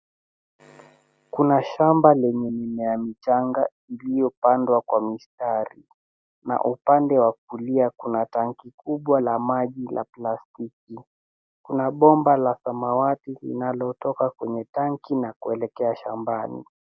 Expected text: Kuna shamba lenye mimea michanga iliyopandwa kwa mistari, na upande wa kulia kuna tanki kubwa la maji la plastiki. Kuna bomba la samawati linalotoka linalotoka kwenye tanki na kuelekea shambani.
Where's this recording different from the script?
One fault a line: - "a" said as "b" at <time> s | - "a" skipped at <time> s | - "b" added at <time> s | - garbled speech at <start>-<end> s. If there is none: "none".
- "linalotoka" skipped at 14.3 s